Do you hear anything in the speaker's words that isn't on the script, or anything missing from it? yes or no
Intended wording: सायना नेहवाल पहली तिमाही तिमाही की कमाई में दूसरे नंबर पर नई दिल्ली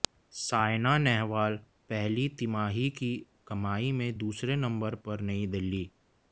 yes